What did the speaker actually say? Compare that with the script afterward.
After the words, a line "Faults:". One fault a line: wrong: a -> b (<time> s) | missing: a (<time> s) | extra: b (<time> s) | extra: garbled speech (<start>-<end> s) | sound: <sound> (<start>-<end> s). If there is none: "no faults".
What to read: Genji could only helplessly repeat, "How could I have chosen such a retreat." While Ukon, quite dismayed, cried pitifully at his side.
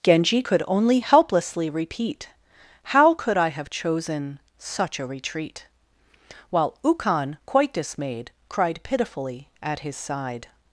Genji could only helplessly repeat, "How could I have chosen such a retreat." While Ukon, quite dismayed, cried pitifully at his side.
Faults:
no faults